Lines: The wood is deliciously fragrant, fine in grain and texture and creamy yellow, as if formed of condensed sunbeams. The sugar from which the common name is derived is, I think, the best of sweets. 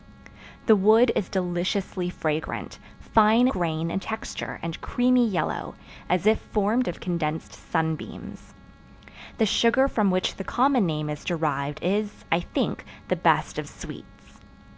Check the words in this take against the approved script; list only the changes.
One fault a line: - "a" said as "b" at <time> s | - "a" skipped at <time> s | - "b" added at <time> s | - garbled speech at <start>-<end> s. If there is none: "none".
- "in" skipped at 3.5 s